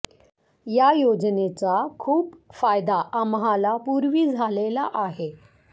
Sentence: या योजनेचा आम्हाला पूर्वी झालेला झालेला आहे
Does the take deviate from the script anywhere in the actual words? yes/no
yes